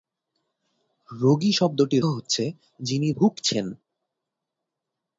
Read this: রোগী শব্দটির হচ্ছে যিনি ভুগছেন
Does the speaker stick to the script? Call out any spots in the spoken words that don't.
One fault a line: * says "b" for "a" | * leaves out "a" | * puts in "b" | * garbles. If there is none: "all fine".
all fine